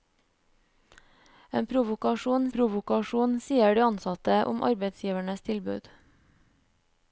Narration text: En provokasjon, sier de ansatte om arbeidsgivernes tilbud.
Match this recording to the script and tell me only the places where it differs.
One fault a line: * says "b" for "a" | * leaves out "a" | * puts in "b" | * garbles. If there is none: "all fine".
* puts in "provokasjon"